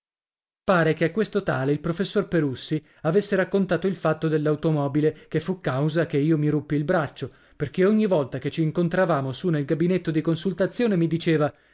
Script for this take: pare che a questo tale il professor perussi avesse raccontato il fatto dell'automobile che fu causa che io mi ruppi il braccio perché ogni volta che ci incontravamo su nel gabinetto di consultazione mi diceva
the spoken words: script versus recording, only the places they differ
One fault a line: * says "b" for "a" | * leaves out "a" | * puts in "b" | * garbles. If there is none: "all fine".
all fine